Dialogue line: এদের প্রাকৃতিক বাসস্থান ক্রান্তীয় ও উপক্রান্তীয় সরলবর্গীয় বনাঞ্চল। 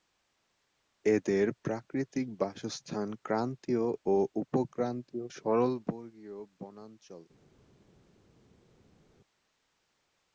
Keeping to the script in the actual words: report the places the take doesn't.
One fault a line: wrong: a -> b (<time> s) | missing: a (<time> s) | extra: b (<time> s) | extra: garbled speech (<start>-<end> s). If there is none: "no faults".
no faults